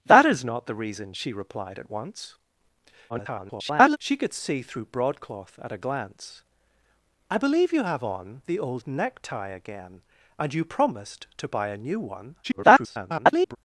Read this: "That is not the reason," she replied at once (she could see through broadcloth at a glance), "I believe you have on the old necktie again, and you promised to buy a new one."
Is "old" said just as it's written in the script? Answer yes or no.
yes